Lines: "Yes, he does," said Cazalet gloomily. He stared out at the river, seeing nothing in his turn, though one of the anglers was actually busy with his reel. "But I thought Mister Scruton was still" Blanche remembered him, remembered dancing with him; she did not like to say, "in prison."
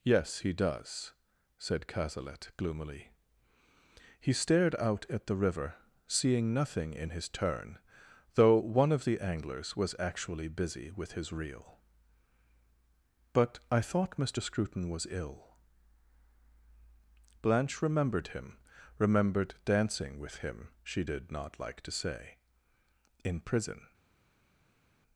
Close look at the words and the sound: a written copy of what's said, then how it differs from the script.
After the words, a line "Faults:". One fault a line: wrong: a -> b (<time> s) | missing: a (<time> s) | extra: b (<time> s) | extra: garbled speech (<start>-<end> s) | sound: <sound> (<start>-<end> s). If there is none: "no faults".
"Yes, he does," said Cazalet gloomily. He stared out at the river, seeing nothing in his turn, though one of the anglers was actually busy with his reel. "But I thought Mister Scruton was ill" Blanche remembered him, remembered dancing with him; she did not like to say, "in prison."
Faults:
wrong: still -> ill (15.1 s)